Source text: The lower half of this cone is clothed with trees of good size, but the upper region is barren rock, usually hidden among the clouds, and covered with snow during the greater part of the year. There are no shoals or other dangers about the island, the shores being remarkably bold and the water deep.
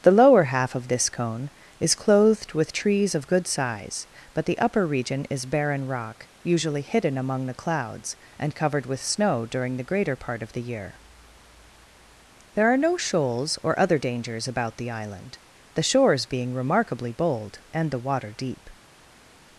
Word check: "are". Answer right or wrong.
right